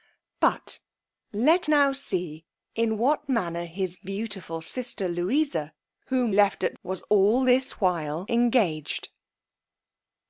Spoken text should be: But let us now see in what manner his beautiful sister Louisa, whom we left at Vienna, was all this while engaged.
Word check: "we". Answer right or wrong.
wrong